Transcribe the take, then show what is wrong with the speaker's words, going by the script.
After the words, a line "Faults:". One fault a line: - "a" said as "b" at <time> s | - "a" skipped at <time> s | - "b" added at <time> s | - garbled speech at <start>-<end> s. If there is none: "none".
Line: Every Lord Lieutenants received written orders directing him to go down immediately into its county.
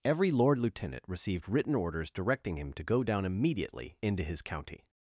Every Lord Lieutenant received written orders directing him to go down immediately into his county.
Faults:
- "Lieutenants" said as "Lieutenant" at 0.6 s
- "its" said as "his" at 4.2 s